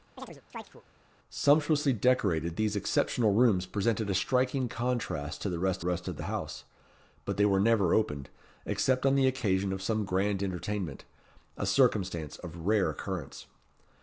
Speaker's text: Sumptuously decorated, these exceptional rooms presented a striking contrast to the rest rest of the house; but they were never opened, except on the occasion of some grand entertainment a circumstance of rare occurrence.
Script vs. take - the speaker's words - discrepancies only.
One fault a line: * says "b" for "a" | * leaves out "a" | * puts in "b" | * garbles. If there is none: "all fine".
all fine